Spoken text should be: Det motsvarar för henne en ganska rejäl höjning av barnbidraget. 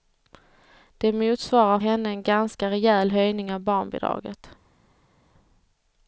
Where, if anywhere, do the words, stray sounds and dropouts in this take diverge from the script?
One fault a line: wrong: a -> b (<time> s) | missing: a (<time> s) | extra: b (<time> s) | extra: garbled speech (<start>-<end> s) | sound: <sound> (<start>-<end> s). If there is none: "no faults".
missing: för (1.8 s)